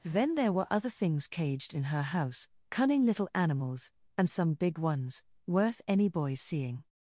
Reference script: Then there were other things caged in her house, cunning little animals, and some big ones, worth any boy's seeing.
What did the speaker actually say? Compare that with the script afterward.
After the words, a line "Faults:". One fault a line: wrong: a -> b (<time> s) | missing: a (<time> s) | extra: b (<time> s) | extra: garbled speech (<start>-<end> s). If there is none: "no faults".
Then there were other things caged in her house, cunning little animals, and some big ones, worth any boy's seeing.
Faults:
no faults